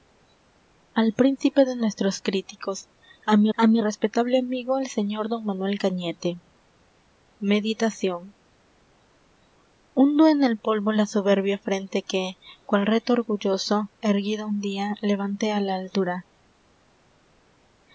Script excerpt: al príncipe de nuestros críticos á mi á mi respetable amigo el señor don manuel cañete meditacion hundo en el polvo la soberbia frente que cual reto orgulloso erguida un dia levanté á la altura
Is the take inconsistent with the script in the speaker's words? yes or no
no